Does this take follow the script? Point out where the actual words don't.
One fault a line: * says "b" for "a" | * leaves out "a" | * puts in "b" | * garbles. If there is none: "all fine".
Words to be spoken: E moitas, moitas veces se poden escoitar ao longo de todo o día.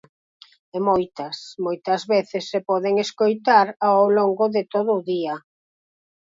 all fine